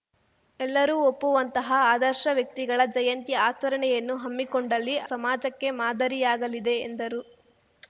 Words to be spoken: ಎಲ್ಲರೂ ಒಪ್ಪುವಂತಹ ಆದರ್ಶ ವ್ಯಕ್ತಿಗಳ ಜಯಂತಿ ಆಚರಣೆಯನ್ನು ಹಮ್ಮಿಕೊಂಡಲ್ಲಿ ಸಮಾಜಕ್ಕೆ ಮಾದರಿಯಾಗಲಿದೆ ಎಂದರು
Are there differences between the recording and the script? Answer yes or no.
no